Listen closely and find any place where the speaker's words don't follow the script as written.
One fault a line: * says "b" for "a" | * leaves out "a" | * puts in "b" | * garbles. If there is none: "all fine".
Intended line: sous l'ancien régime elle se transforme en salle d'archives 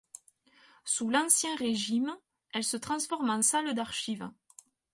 all fine